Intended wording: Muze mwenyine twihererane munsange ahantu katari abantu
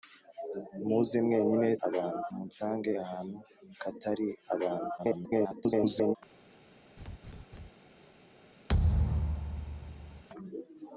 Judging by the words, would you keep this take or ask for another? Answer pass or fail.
fail